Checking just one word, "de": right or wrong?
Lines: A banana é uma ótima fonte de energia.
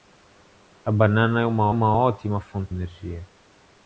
wrong